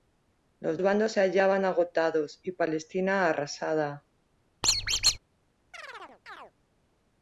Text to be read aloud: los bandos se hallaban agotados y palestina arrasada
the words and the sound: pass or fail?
fail